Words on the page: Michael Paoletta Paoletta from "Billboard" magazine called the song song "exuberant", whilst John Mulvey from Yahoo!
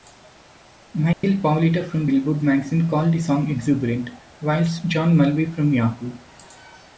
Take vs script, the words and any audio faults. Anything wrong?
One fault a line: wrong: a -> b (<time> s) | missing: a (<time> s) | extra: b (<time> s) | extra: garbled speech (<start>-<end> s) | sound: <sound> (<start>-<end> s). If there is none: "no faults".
sound: dropout (1.1-1.2 s)
missing: Paoletta (1.9 s)
missing: song (3.5 s)